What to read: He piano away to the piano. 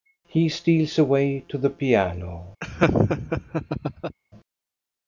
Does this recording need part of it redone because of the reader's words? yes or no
yes